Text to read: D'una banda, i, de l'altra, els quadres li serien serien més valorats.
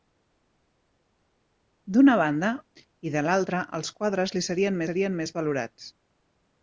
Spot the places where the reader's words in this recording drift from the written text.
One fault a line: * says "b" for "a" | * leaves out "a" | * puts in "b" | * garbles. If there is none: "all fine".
all fine